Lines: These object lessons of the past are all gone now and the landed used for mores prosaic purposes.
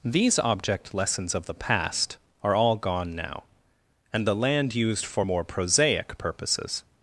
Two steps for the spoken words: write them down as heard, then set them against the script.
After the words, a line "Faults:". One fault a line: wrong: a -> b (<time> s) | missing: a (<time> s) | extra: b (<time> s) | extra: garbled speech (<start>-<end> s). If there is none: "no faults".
These object lessons of the past are all gone now and the land used for more prosaic purposes.
Faults:
wrong: landed -> land (4.3 s)
wrong: mores -> more (5.2 s)